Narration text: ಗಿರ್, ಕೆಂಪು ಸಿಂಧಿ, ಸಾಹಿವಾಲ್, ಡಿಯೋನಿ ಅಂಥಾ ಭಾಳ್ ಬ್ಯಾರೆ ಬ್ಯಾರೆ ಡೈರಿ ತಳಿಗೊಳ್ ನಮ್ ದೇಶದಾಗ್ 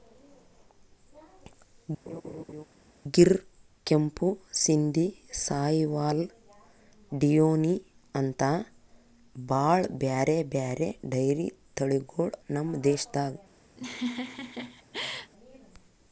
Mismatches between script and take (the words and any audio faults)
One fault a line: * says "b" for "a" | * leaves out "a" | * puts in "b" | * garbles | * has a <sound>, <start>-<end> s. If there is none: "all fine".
* has a laugh, 2.1-2.6 s
* has a laugh, 13.8-15.3 s